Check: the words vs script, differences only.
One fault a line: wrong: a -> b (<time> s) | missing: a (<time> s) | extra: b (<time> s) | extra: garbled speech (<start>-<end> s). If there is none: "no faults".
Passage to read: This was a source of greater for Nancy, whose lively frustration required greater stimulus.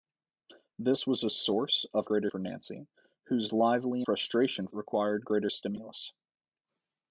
no faults